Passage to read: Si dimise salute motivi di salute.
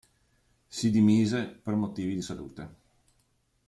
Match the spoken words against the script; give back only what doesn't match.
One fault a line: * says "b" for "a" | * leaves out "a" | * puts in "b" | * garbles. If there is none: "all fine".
* says "per" for "salute"